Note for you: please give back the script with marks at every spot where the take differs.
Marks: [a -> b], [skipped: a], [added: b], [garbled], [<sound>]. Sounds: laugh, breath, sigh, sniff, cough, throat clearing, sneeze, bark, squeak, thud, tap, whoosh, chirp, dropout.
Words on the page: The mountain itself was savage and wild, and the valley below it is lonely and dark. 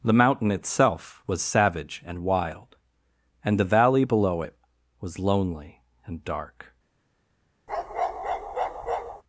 The mountain itself was savage and wild, and the valley below it [is -> was] lonely and dark. [bark]